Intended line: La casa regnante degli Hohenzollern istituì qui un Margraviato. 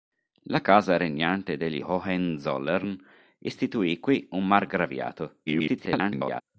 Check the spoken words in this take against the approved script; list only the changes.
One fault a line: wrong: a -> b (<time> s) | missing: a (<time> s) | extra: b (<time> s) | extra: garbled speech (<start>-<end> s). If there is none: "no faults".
extra: garbled speech (5.5-6.4 s)